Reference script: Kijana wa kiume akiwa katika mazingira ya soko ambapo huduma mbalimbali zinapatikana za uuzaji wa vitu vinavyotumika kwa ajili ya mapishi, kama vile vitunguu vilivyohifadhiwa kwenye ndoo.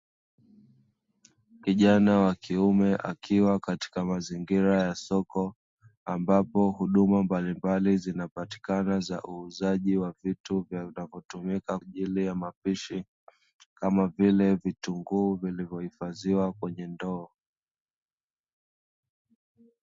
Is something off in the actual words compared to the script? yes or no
yes